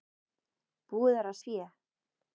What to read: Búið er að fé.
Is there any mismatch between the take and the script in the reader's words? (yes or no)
no